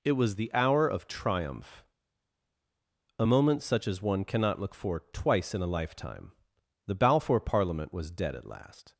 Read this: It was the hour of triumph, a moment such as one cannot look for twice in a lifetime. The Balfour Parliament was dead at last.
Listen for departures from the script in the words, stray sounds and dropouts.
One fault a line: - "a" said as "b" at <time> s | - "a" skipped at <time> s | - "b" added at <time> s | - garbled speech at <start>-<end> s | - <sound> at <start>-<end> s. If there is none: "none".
none